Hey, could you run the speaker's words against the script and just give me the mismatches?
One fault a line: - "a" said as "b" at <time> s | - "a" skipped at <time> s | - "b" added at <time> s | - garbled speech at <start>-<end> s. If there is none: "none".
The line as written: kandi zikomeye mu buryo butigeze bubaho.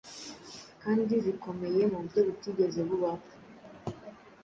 none